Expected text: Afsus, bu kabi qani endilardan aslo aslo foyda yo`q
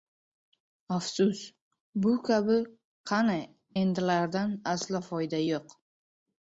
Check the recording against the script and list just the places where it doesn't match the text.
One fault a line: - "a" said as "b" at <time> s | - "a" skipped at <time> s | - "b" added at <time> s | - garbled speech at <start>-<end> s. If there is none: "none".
- "aslo" skipped at 5.1 s